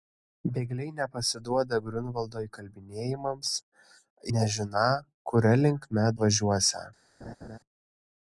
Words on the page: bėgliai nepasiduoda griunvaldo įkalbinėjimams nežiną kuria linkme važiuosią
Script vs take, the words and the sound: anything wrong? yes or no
yes